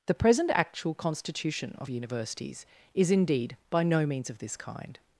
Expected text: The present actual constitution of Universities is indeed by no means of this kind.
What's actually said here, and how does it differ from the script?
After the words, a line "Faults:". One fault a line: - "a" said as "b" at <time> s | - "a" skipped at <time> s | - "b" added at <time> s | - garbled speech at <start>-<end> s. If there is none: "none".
The present actual constitution of Universities is indeed by no means of this kind.
Faults:
none